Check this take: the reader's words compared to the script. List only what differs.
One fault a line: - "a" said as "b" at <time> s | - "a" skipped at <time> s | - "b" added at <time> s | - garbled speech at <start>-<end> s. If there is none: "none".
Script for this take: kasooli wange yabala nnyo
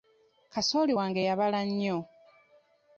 none